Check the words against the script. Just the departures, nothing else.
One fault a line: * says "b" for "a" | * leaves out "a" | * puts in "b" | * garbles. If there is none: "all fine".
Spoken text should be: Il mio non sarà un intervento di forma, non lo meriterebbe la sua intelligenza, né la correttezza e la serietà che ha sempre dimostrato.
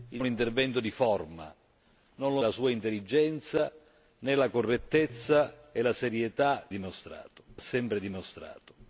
* leaves out "mio non sarà"
* leaves out "meriterebbe"
* says "dimostrato" for "che"